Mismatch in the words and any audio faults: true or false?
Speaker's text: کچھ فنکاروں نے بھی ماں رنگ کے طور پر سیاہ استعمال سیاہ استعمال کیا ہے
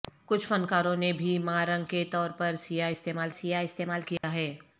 true